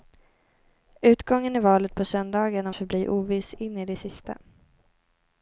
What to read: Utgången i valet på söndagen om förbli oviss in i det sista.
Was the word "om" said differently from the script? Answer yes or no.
no